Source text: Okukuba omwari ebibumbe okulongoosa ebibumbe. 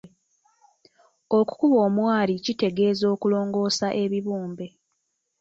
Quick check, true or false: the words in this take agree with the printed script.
false